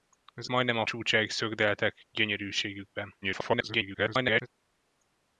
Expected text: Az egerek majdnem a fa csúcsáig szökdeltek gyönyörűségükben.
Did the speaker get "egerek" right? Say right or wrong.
wrong